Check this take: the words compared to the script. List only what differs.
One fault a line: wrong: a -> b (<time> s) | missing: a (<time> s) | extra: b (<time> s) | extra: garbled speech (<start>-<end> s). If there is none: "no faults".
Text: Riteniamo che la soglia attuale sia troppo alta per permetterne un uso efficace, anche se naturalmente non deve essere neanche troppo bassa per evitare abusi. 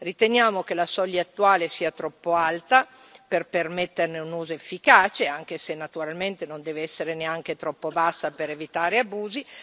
no faults